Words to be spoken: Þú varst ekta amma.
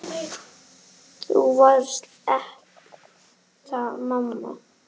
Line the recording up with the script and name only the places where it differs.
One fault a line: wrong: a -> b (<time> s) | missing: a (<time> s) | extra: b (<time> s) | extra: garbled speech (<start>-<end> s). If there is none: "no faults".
no faults